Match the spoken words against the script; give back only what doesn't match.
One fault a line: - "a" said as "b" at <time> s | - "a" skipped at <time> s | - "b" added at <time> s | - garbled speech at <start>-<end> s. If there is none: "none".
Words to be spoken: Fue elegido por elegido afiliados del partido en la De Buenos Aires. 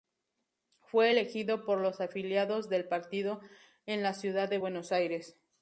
- "elegido" said as "los" at 1.8 s
- "Ciudad" added at 4.1 s